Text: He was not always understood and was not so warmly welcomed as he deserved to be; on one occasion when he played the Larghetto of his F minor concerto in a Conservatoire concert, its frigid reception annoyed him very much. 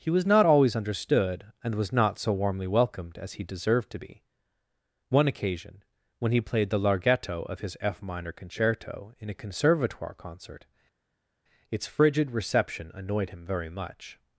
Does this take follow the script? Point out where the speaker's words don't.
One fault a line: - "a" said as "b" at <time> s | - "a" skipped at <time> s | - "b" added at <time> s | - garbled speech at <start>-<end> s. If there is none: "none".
- "on" skipped at 4.2 s